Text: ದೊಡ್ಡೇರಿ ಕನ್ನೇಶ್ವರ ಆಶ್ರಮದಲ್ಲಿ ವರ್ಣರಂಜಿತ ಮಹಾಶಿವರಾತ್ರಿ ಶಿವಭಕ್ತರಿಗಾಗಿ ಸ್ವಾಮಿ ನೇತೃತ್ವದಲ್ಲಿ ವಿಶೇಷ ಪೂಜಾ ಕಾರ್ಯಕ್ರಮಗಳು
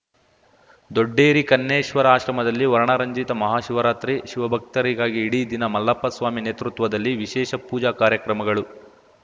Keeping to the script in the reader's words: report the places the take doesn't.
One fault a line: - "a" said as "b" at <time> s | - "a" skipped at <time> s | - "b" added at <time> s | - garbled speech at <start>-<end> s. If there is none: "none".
- "ಇಡೀ ದಿನ ಮಲ್ಲಪ್ಪ" added at 5.2 s